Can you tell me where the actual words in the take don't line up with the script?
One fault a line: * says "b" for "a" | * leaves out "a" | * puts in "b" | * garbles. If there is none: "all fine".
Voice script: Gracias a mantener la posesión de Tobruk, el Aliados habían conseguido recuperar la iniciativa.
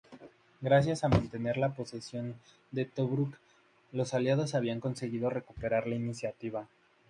* says "los" for "el"